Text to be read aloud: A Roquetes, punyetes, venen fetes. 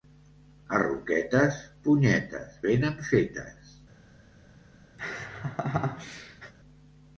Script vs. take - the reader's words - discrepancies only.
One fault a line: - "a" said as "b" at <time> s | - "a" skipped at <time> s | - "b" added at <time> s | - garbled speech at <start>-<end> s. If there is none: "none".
none